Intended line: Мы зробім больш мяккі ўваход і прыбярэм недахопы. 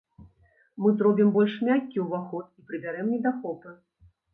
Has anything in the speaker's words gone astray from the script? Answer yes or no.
no